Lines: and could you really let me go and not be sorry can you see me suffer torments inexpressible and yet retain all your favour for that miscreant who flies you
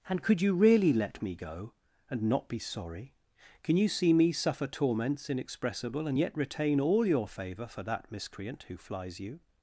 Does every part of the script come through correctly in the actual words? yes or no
yes